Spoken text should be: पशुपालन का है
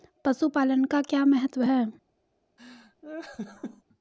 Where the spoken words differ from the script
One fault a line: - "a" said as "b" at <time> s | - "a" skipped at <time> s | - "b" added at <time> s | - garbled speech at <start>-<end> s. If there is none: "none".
- "क्या महत्व" added at 1.0 s